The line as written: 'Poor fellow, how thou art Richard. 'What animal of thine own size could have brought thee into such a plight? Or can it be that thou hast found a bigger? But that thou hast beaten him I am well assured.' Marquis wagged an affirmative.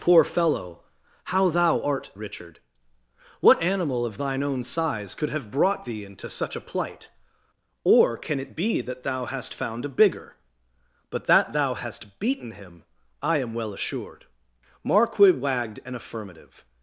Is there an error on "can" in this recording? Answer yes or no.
no